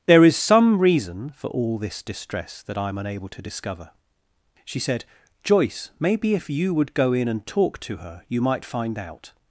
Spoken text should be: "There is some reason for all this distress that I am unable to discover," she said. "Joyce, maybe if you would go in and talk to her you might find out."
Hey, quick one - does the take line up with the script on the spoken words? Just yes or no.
yes